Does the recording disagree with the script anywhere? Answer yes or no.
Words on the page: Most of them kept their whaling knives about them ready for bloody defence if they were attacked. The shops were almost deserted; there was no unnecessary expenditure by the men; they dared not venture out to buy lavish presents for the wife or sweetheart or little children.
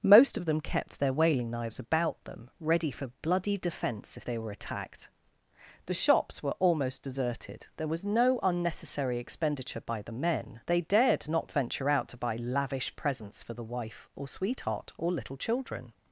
no